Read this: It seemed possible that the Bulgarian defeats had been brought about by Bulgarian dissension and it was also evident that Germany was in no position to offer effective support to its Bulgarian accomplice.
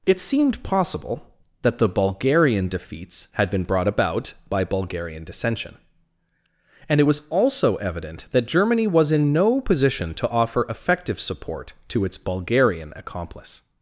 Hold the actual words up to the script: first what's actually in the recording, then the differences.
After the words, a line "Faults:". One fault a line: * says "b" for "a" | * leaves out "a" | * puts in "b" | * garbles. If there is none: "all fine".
It seemed possible that the Bulgarian defeats had been brought about by Bulgarian dissension and it was also evident that Germany was in no position to offer effective support to its Bulgarian accomplice.
Faults:
all fine